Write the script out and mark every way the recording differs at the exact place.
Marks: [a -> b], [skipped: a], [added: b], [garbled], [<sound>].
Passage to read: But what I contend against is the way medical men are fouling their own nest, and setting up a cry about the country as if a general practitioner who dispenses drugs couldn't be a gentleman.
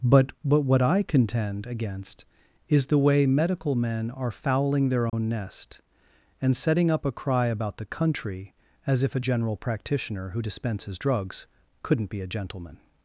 But [added: but] what I contend against is the way medical men are fouling their own [dropout] nest, and setting up a cry about the country as if a general practitioner who dispenses drugs couldn't be a gentleman.